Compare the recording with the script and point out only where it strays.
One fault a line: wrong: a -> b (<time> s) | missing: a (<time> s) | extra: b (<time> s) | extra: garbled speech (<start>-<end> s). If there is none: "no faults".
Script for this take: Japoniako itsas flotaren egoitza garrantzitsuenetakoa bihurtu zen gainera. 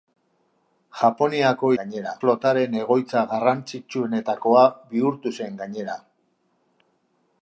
wrong: itsas -> gainera (1.8 s)